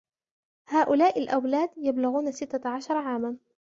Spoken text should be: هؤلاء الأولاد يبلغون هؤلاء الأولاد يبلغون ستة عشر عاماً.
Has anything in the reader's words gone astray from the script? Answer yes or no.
yes